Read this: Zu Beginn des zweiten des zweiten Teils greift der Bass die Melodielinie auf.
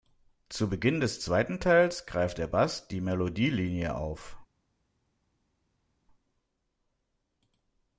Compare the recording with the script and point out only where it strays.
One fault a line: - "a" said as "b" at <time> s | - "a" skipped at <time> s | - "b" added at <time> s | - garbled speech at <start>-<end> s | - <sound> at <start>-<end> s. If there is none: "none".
- "des zweiten" skipped at 1.6 s